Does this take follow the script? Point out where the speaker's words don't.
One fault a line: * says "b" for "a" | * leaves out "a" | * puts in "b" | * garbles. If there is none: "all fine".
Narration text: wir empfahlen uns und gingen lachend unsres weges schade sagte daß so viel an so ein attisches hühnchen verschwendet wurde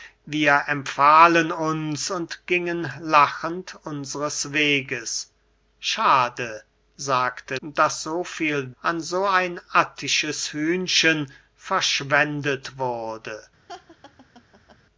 all fine